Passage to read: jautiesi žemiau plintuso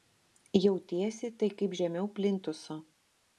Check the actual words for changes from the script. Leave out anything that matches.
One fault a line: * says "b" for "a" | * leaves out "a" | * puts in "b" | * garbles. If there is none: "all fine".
* puts in "tai kaip"